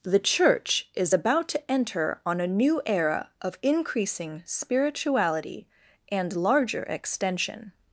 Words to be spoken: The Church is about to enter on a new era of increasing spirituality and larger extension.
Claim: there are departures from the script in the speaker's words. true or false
false